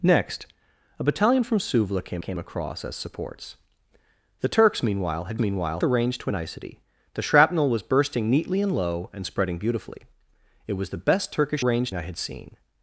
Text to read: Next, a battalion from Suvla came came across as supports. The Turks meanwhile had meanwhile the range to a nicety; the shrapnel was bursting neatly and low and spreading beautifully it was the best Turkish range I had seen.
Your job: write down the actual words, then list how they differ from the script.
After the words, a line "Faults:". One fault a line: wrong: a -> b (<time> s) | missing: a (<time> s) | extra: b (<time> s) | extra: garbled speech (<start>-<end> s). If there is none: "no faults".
Next, a battalion from Suvla came came across as supports. The Turks meanwhile had meanwhile the range to a nicety; the shrapnel was bursting neatly and low and spreading beautifully it was the best Turkish range I had seen.
Faults:
no faults